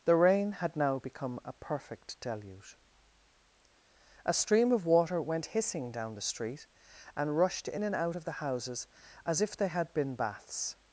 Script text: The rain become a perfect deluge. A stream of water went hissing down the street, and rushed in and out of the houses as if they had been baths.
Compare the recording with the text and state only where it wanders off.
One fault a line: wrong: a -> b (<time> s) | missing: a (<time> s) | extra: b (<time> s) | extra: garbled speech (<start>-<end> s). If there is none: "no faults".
extra: had now (0.5 s)